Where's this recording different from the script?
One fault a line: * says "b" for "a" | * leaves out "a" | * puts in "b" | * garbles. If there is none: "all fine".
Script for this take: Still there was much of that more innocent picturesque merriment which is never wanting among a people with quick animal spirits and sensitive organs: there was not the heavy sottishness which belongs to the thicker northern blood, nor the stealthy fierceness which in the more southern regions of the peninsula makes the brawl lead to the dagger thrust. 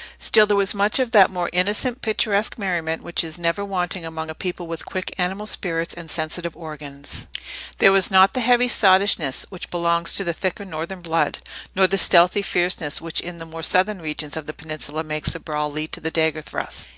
all fine